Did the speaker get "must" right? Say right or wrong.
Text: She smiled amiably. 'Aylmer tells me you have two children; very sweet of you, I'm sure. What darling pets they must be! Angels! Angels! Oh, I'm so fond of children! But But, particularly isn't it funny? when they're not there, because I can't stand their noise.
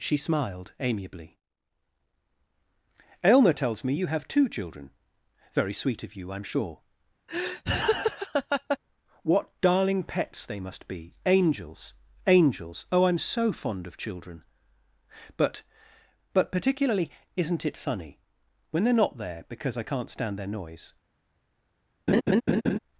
right